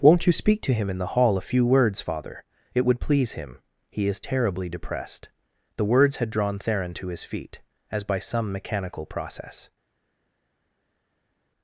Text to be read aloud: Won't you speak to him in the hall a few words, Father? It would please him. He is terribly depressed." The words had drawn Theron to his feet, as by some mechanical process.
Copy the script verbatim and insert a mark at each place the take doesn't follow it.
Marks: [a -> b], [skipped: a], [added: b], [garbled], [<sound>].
Won't you speak to him in the hall a few words, Father? It would please him. He is terribly depressed." The words had drawn Theron to his feet, as by some mechanical process.